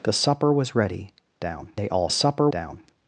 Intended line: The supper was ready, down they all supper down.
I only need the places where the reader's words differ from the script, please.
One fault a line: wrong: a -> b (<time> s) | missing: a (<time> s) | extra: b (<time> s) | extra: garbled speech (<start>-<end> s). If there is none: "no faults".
no faults